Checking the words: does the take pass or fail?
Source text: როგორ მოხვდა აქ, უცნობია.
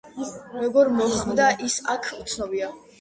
fail